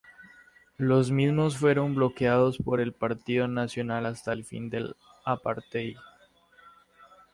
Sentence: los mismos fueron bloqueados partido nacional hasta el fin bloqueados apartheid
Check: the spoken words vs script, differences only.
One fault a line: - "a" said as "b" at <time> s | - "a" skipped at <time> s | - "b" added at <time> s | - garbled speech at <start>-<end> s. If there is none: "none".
- "por el" added at 2.6 s
- "bloqueados" said as "del" at 4.7 s